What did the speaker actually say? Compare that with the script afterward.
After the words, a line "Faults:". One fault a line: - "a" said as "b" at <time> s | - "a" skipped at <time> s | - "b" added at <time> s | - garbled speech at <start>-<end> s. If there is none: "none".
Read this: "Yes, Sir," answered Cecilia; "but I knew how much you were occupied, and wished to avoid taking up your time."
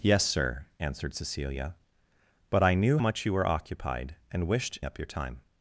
"Yes, Sir," answered Cecilia; "but I knew much you were occupied, and wished up your time."
Faults:
- "how" skipped at 3.0 s
- "to avoid taking" skipped at 4.8 s